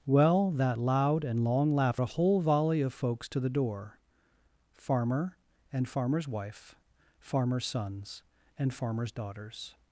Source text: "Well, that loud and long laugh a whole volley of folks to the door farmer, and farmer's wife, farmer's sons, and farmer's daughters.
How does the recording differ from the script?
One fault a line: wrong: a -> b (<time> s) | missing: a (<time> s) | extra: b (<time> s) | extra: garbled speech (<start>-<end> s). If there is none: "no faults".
no faults